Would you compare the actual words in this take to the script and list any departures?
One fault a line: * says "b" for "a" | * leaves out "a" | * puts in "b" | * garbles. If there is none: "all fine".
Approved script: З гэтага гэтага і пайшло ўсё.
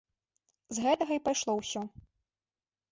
* leaves out "гэтага"